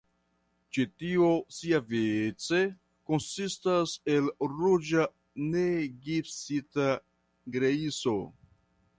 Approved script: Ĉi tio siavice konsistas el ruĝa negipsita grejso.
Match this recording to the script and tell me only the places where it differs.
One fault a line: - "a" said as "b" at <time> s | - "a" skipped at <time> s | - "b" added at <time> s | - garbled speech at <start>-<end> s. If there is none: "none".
none